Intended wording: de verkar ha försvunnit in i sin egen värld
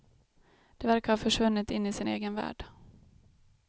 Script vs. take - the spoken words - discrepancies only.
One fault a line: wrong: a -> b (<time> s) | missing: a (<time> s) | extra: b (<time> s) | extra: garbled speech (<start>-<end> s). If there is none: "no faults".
no faults